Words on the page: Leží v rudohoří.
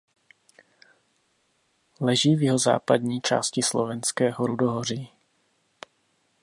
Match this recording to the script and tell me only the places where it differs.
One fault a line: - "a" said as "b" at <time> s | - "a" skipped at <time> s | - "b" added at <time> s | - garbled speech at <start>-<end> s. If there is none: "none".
- "jihozápadní části Slovenského" added at 2.4 s